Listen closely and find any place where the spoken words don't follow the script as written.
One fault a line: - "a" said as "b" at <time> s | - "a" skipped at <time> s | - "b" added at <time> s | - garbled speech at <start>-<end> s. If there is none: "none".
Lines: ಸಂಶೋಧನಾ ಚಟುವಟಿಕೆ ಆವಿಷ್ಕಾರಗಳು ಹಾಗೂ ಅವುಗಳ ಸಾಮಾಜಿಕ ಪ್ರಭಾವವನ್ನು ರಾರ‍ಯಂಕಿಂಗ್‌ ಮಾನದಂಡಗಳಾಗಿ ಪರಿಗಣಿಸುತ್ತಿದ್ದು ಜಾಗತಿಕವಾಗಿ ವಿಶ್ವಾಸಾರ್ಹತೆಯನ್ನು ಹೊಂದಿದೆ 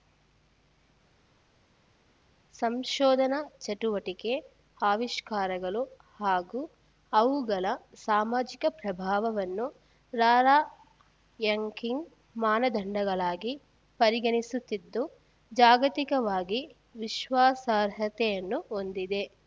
none